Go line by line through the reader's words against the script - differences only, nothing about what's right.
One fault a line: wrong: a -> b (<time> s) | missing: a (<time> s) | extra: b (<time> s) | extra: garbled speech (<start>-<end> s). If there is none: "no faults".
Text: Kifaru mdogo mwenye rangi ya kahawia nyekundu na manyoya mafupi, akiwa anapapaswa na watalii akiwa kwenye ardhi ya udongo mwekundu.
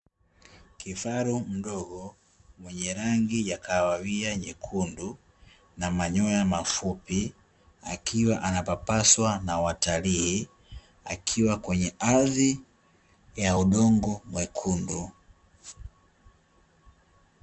no faults